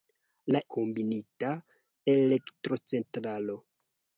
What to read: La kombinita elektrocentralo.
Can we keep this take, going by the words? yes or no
yes